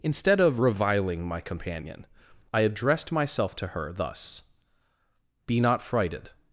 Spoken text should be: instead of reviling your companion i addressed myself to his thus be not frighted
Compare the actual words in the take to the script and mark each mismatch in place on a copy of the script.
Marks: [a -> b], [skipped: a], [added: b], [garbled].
instead of reviling [your -> my] companion i addressed myself to [his -> her] thus be not frighted